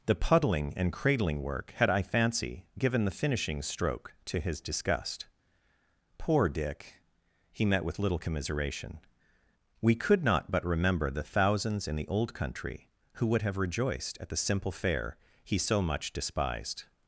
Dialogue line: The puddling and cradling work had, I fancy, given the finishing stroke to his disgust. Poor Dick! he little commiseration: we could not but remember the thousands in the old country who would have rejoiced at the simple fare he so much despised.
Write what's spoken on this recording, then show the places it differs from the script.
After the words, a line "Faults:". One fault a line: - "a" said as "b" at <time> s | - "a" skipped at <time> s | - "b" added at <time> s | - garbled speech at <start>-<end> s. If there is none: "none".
The puddling and cradling work had, I fancy, given the finishing stroke to his disgust. Poor Dick! he met with little commiseration: we could not but remember the thousands in the old country who would have rejoiced at the simple fare he so much despised.
Faults:
- "met with" added at 7.7 s